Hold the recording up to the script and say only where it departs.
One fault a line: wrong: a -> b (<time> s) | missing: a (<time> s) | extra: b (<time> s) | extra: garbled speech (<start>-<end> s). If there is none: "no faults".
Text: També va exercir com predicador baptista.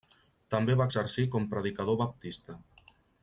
no faults